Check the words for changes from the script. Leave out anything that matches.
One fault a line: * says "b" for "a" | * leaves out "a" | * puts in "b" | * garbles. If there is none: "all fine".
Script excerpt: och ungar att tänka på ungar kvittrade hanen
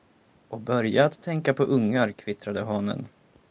* says "börja" for "ungar"